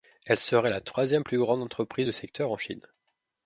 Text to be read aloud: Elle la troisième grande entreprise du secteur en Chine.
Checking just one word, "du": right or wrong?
right